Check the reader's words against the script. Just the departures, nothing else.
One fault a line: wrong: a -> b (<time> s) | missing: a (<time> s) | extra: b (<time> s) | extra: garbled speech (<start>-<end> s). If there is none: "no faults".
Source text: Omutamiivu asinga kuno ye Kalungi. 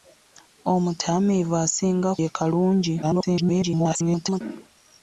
missing: kuno (2.1 s)
extra: garbled speech (3.0-4.4 s)